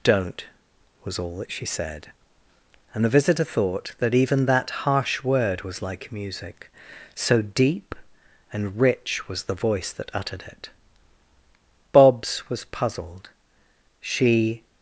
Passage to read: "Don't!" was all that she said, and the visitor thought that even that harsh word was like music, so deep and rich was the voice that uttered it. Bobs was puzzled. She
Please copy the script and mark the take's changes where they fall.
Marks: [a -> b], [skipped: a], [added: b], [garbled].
"Don't!" was all that she said, and the visitor thought that even that harsh word was like music, so deep and rich was the voice that uttered it. Bobs was puzzled. She